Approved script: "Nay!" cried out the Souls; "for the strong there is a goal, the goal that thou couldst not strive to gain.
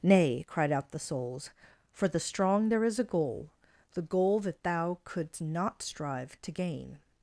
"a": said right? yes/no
yes